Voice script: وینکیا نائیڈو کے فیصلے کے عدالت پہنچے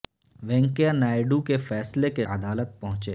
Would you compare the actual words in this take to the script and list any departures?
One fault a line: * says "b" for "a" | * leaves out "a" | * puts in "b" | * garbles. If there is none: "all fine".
all fine